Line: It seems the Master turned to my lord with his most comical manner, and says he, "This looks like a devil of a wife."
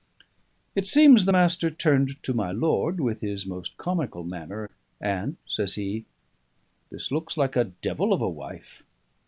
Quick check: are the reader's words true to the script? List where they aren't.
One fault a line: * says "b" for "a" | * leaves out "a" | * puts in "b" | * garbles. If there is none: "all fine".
all fine